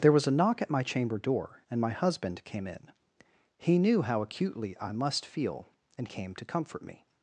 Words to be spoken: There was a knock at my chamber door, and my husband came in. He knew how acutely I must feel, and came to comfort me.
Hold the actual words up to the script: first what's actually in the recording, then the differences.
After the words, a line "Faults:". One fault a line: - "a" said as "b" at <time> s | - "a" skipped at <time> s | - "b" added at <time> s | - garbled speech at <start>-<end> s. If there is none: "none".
There was a knock at my chamber door, and my husband came in. He knew how acutely I must feel, and came to comfort me.
Faults:
none